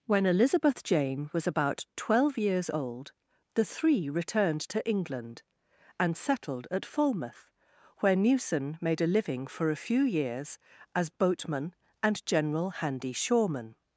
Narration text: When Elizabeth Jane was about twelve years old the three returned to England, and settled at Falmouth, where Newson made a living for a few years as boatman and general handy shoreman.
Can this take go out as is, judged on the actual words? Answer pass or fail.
pass